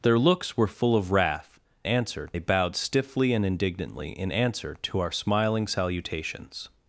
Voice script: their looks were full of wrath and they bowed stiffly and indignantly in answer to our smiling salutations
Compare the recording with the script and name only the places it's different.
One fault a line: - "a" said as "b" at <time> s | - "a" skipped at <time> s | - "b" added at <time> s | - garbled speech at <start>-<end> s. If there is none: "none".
- "and" said as "answer" at 1.8 s